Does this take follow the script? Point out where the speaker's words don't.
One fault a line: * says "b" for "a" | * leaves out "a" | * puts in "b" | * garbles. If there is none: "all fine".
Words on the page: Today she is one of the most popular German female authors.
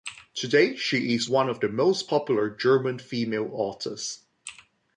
all fine